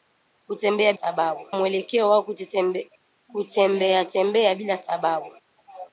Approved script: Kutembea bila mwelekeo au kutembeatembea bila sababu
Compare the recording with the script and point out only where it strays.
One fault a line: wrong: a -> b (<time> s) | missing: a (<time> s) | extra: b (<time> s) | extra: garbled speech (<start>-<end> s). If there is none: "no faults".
wrong: bila -> sababu (0.9 s)